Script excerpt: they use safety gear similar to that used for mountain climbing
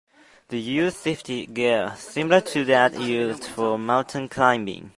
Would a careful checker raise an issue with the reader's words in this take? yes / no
no